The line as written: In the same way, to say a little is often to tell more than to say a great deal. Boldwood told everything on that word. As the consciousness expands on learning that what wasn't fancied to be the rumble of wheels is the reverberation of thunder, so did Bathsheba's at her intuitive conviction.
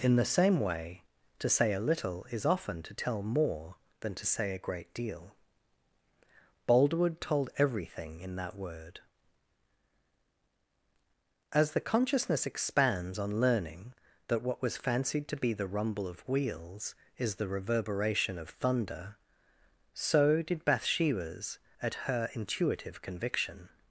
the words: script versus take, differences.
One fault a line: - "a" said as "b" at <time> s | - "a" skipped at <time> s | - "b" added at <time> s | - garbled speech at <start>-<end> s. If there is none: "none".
- "on" said as "in" at 8.2 s
- "wasn't" said as "was" at 14.6 s